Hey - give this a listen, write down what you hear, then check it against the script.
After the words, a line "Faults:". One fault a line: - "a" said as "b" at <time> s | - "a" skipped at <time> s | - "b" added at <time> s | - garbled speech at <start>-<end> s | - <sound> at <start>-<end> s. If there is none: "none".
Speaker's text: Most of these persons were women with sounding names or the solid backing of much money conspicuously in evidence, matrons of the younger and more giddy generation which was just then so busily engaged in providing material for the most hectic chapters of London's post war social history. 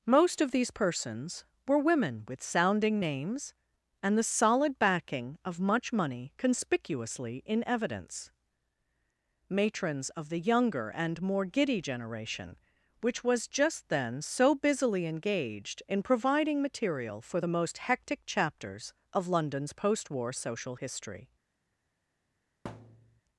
Most of these persons were women with sounding names and the solid backing of much money conspicuously in evidence, matrons of the younger and more giddy generation which was just then so busily engaged in providing material for the most hectic chapters of London's post war social history.
Faults:
- "or" said as "and" at 4.0 s
- thud at 22.6-23.2 s